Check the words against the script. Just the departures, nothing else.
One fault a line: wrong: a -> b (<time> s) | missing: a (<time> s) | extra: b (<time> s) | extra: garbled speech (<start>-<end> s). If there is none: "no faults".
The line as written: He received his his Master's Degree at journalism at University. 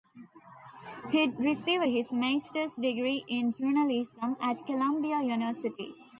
missing: his (2.1 s)
wrong: at -> in (3.3 s)
extra: Columbia (4.7 s)